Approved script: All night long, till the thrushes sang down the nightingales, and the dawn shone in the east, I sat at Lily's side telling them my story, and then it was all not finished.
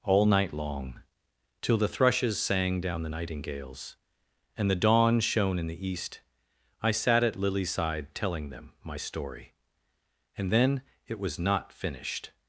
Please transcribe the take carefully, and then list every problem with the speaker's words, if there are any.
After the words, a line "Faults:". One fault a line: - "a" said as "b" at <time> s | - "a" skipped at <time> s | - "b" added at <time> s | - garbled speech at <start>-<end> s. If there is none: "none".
All night long, till the thrushes sang down the nightingales, and the dawn shone in the east, I sat at Lily's side telling them my story, and then it was not finished.
Faults:
- "all" skipped at 11.4 s